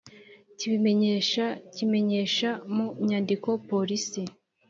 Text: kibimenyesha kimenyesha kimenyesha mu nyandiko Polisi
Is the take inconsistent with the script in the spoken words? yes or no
yes